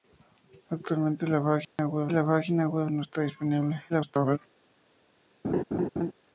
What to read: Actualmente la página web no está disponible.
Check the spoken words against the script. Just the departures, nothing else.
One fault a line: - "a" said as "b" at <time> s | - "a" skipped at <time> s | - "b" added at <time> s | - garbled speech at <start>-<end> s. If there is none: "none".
- "la página web" added at 2.1 s
- garbled speech at 3.9-4.4 s